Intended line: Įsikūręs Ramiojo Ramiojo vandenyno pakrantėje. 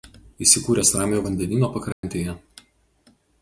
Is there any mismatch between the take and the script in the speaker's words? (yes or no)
yes